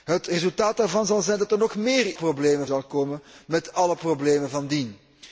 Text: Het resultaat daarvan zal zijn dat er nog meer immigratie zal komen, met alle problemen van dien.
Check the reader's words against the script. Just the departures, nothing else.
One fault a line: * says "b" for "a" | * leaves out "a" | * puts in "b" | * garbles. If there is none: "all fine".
* says "problemen" for "immigratie"